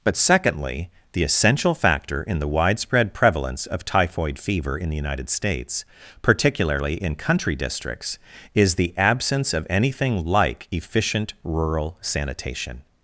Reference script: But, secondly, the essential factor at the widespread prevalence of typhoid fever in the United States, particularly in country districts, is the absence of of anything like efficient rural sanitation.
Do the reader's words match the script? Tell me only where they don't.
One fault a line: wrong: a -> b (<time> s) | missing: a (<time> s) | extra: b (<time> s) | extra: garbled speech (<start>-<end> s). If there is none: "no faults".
wrong: at -> in (2.2 s)
missing: of (9.7 s)